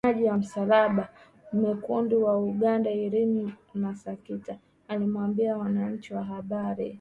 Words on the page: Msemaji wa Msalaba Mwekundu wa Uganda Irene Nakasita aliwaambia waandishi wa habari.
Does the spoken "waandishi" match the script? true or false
true